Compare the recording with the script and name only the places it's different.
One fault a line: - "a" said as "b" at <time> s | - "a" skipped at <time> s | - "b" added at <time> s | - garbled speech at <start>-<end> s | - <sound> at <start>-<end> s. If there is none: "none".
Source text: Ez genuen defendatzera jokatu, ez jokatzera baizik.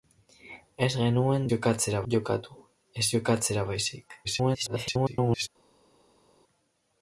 - "defendatzera" said as "jokatzera" at 1.5 s
- garbled speech at 4.2-5.5 s